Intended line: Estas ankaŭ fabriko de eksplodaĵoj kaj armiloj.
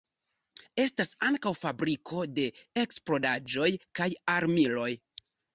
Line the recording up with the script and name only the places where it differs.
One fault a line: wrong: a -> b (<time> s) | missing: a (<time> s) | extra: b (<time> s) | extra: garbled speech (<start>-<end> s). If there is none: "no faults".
no faults